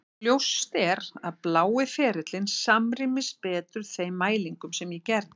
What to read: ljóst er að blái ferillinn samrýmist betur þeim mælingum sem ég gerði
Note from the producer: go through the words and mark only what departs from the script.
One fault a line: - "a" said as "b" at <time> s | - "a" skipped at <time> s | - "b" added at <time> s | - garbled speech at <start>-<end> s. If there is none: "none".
none